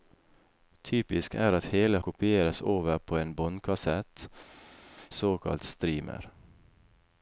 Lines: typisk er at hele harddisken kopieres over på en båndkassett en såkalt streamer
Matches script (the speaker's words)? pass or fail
fail